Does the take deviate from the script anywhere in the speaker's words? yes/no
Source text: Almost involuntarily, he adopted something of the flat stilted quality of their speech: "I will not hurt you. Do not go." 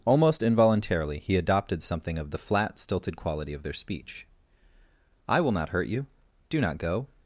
no